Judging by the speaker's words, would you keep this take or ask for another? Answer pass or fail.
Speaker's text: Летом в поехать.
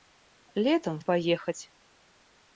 pass